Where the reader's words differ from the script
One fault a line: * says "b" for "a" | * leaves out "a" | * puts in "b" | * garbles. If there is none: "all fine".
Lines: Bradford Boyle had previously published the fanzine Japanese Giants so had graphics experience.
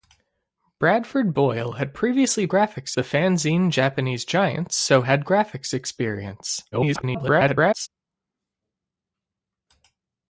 * says "graphics" for "published"
* garbles